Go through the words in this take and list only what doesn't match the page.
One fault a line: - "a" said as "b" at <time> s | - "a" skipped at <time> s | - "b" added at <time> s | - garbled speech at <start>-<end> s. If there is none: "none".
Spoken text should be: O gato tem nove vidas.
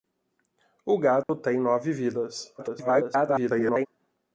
- garbled speech at 2.6-3.9 s